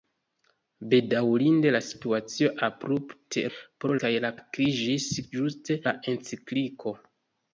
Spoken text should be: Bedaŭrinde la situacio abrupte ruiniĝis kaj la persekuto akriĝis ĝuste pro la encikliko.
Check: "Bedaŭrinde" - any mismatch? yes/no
no